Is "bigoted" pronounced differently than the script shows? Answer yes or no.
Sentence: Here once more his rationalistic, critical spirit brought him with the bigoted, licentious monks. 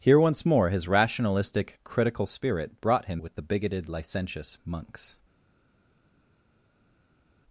no